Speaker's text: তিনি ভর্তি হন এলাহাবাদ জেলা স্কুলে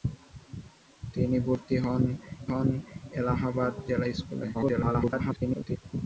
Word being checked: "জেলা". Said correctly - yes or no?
yes